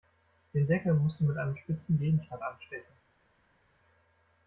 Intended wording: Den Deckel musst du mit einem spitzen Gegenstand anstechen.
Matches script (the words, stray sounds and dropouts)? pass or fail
pass